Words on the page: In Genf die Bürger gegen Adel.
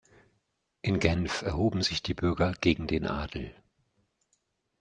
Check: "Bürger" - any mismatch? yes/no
no